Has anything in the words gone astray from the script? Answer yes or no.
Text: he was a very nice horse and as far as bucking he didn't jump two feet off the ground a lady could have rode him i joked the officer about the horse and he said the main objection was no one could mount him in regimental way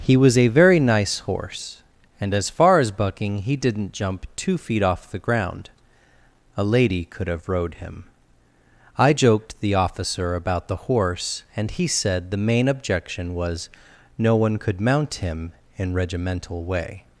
no